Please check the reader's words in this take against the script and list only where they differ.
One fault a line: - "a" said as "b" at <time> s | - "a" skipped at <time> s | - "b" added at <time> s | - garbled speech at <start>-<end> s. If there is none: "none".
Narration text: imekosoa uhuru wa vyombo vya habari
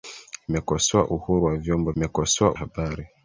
- "vya" said as "imekosoa" at 2.0 s